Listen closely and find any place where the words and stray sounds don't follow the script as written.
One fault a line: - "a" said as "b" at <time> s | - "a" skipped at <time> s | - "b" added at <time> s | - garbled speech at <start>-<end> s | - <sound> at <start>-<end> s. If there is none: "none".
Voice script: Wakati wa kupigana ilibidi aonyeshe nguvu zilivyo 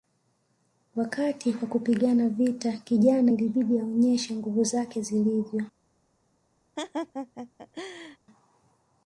- "vita kijana" added at 2.3 s
- "zake" added at 4.6 s
- laugh at 6.8-8.2 s